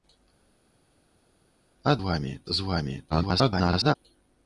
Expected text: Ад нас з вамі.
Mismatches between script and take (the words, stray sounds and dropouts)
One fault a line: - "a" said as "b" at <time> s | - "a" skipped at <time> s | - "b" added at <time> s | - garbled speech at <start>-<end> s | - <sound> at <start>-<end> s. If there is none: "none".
- "нас" said as "вамі" at 2.0 s
- garbled speech at 3.1-4.0 s